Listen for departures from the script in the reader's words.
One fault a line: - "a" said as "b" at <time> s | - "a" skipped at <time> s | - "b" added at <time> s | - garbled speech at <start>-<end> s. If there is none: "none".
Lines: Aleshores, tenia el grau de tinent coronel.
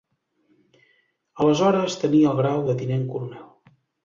none